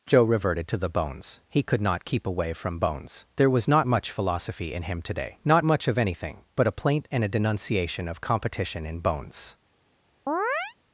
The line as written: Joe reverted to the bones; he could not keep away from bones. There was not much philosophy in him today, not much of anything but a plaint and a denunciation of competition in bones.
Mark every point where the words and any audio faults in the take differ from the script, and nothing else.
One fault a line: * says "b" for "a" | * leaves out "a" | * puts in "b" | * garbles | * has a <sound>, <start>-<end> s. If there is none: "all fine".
* has a chirp, 10.3-10.7 s